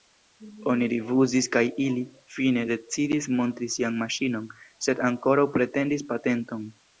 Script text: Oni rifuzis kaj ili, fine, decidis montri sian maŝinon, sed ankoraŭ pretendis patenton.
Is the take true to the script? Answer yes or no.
yes